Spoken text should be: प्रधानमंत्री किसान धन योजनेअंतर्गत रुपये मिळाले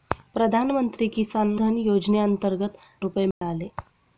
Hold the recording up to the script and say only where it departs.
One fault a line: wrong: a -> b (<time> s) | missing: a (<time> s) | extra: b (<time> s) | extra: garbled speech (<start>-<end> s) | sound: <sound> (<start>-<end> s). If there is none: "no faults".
sound: dropout (3.3-3.4 s)